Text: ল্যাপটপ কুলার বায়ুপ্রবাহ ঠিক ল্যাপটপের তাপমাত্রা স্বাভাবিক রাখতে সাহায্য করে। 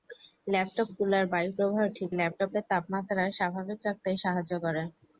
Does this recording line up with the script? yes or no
yes